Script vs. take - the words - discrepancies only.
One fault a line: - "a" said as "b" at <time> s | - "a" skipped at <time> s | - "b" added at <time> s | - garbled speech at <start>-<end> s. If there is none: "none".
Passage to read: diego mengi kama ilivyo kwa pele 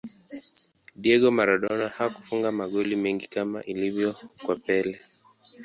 - "maradona hakufunga magoli" added at 1.4 s